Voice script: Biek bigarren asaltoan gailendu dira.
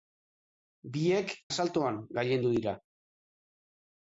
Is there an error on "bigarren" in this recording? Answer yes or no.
yes